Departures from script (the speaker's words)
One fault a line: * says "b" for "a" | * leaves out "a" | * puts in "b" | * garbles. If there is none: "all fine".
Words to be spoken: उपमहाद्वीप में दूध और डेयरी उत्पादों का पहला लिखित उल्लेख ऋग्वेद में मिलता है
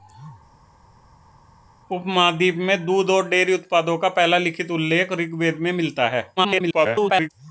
* garbles